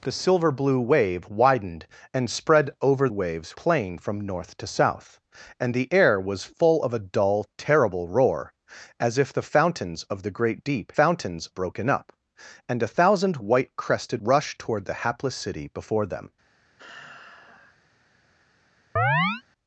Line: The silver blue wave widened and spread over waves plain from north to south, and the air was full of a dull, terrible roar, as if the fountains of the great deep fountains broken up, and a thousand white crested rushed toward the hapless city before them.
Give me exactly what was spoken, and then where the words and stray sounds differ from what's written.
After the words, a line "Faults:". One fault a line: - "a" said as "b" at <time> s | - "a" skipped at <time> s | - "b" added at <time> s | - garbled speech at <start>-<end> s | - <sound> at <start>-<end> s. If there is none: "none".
The silver blue wave widened and spread over waves plain from north to south, and the air was full of a dull, terrible roar, as if the fountains of the great deep fountains broken up, and a thousand white crested rushed toward the hapless city before them.
Faults:
- sigh at 16.8-17.8 s
- chirp at 19.0-19.4 s